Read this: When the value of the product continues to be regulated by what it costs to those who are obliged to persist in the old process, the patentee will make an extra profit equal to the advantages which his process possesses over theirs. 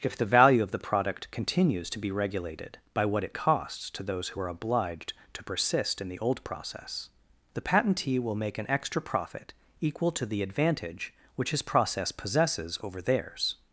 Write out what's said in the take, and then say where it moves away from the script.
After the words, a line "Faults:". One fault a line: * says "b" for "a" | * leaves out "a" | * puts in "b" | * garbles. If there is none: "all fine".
If the value of the product continues to be regulated by what it costs to those who are obliged to persist in the old process, the patentee will make an extra profit equal to the advantage which his process possesses over theirs.
Faults:
* says "If" for "When"
* says "advantage" for "advantages"